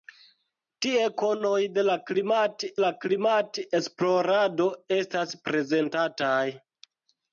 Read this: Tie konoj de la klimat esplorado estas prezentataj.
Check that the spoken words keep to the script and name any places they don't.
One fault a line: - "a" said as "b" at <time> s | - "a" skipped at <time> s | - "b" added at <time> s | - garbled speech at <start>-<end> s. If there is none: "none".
- "la klimat" added at 2.8 s